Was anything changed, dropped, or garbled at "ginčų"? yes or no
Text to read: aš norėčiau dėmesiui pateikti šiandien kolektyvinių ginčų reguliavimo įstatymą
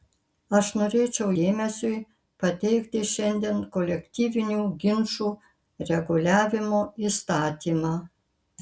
no